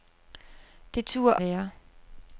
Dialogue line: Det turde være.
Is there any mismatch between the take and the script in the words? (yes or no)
no